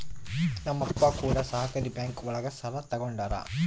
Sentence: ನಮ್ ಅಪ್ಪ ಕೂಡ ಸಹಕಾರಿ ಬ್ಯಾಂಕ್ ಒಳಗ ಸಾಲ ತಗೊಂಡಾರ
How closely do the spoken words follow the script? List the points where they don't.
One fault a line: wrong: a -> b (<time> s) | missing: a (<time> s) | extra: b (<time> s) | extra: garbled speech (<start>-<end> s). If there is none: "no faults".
no faults